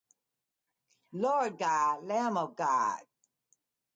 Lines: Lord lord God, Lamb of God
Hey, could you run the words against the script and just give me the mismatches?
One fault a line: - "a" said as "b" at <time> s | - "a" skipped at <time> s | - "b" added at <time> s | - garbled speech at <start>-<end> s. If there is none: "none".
- "lord" skipped at 1.6 s